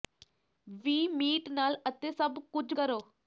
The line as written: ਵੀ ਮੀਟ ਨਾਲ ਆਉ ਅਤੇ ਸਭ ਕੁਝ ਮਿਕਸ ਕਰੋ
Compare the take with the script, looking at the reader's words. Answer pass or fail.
fail